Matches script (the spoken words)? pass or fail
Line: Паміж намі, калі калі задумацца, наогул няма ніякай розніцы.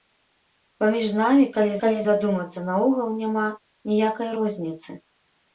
pass